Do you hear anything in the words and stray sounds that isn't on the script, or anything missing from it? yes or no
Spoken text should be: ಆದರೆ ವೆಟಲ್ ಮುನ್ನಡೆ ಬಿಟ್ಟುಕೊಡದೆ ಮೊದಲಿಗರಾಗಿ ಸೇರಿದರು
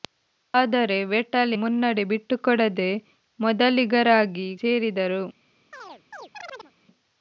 yes